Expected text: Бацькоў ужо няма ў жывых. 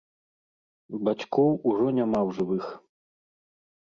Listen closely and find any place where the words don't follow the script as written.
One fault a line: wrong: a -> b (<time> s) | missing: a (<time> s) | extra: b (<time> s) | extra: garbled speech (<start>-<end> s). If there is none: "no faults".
no faults